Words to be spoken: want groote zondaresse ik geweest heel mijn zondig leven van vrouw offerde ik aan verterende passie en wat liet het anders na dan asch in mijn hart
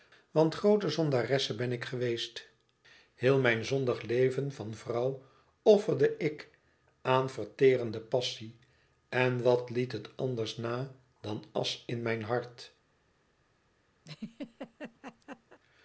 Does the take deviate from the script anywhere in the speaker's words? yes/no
yes